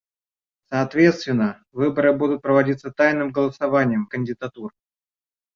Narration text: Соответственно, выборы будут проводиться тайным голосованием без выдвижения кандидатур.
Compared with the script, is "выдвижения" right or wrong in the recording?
wrong